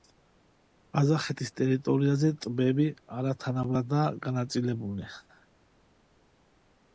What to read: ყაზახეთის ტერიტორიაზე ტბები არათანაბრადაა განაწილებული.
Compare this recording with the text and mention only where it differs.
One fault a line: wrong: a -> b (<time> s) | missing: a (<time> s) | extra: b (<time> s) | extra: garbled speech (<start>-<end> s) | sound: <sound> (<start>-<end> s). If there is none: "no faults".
no faults